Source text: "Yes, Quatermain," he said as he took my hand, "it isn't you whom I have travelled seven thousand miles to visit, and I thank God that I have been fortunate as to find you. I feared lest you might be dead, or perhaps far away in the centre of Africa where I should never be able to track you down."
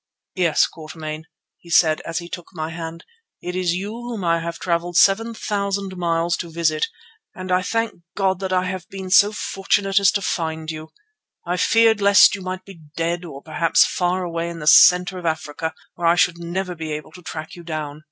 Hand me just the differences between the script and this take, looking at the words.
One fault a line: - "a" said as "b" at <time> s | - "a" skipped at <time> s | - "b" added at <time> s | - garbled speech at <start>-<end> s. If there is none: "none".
- "isn't" said as "is" at 3.5 s
- "so" added at 9.1 s